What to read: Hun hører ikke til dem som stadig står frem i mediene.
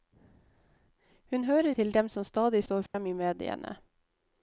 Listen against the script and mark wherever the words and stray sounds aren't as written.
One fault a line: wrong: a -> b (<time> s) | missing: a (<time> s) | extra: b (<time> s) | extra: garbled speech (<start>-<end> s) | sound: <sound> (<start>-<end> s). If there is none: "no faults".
missing: ikke (1.8 s)
sound: dropout (2.9-2.9 s)